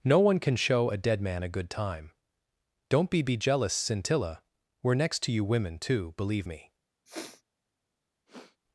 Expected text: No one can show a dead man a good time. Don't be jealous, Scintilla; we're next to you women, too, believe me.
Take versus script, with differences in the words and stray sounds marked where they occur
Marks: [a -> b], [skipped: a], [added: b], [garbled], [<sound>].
No one can show a dead man a good time. Don't be [added: be] jealous, Scintilla; we're next to you women, too, believe me. [sniff] [sniff]